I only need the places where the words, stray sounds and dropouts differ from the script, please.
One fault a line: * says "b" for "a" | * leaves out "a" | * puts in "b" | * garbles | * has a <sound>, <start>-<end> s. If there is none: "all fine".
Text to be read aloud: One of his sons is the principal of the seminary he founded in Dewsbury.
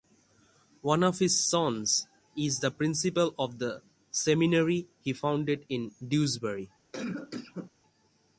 * has a cough, 6.9-7.7 s